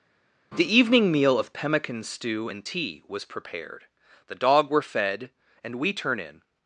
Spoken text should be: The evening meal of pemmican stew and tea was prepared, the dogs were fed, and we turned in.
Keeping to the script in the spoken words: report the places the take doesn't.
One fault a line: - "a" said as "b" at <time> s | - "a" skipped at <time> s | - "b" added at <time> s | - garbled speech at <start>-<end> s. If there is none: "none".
- "dogs" said as "dog" at 4.4 s
- "turned" said as "turn" at 5.9 s